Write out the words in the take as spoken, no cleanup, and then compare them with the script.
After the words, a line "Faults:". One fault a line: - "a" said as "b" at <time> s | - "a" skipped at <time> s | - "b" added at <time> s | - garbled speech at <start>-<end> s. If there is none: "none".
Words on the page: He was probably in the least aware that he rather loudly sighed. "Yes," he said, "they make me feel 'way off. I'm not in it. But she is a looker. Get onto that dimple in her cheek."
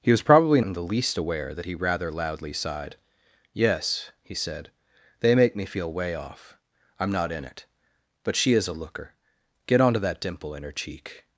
He was probably in the least aware that he rather loudly sighed. "Yes," he said, "they make me feel 'way off. I'm not in it. But she is a looker. Get onto that dimple in her cheek."
Faults:
none